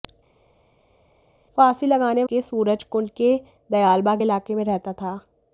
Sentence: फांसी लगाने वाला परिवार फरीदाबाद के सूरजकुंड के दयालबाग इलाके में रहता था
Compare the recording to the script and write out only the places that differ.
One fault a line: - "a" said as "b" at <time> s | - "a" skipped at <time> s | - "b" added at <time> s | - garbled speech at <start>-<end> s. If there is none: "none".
- "वाला परिवार फरीदाबाद" skipped at 2.2 s